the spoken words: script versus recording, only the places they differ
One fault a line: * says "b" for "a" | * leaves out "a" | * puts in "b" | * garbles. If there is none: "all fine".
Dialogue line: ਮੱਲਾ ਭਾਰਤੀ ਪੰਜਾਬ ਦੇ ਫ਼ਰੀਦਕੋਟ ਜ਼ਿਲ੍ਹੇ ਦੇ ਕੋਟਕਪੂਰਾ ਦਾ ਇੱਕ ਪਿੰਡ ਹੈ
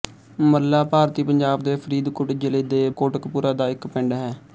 all fine